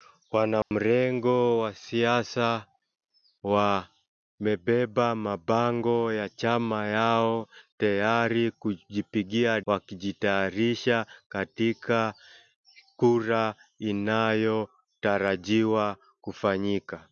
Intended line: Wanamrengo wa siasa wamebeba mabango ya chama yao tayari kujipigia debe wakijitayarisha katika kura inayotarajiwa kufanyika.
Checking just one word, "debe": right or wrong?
wrong